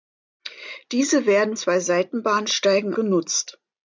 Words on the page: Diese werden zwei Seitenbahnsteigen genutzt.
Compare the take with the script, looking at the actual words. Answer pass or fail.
pass